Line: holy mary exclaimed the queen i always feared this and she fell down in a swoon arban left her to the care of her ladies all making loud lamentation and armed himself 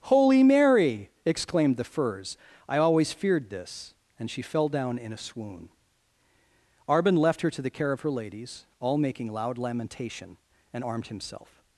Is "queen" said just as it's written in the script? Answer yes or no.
no